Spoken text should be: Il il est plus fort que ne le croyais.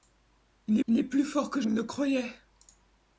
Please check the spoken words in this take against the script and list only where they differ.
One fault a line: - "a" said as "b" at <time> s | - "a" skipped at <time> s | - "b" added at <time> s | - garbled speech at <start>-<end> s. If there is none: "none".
none